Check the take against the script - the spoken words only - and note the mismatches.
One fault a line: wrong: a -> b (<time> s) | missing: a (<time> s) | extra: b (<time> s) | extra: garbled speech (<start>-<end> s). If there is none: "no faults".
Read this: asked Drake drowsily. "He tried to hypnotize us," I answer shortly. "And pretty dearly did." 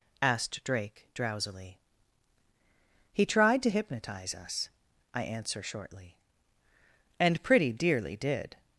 no faults